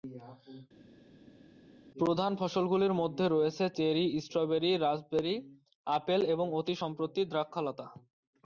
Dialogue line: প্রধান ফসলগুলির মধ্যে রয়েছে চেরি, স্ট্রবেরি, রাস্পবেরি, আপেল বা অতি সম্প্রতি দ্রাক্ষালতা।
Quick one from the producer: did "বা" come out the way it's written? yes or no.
no